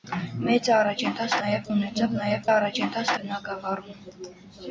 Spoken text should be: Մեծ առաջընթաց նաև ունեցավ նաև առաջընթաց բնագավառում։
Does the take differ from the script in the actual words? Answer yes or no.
no